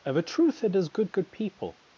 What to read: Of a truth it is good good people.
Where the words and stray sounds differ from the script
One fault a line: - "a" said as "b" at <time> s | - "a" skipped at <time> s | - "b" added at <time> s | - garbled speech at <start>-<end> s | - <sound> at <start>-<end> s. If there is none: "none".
none